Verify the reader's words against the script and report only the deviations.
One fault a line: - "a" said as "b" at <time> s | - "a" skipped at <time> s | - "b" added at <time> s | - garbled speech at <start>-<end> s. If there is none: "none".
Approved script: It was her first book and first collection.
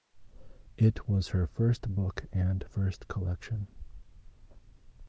none